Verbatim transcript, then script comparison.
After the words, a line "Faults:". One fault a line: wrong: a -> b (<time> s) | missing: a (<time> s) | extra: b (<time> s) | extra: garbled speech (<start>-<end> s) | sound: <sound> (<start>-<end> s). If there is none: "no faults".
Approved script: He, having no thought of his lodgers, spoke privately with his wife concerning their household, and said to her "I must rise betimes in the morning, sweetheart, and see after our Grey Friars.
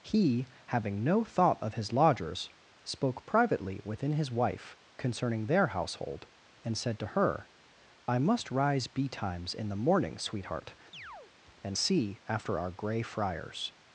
He, having no thought of his lodgers, spoke privately within his wife concerning their household, and said to her "I must rise betimes in the morning, sweetheart, and see after our Grey Friars.
Faults:
wrong: with -> within (3.8 s)
sound: chirp (10.9-11.3 s)